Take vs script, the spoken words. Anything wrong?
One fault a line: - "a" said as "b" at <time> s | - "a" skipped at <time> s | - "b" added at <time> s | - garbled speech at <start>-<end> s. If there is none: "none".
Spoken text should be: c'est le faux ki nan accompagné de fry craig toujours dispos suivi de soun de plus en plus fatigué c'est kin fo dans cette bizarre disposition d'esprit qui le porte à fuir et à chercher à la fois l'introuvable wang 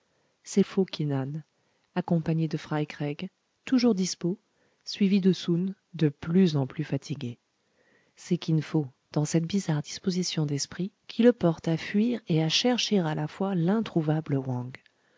- "le" skipped at 0.6 s